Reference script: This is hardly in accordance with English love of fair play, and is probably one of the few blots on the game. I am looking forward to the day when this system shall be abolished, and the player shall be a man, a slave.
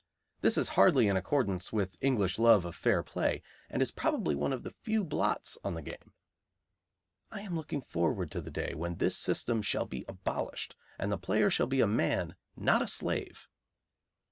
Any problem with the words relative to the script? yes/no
yes